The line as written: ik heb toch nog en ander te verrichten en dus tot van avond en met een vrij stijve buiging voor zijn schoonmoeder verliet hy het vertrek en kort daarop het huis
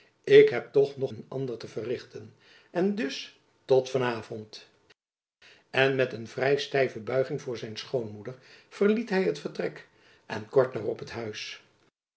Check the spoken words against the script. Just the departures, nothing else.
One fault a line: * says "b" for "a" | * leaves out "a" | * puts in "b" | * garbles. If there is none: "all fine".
all fine